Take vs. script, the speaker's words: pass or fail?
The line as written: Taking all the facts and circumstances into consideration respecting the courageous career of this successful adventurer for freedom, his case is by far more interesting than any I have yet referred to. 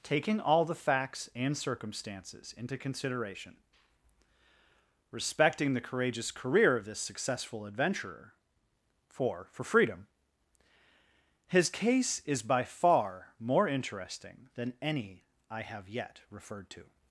fail